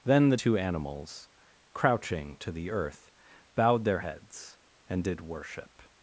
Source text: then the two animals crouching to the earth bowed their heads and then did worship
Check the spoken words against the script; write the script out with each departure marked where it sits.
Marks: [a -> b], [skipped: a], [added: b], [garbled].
then the two animals crouching to the earth bowed their heads and [skipped: then] did worship